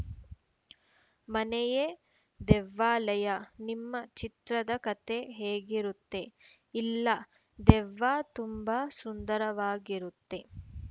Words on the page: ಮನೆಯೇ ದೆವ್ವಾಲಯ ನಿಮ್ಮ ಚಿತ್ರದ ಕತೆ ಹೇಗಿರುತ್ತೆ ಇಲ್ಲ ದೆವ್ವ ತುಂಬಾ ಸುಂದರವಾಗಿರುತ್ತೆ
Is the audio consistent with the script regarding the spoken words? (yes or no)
yes